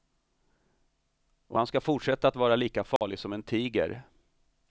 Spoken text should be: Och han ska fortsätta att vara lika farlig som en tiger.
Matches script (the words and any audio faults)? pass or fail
fail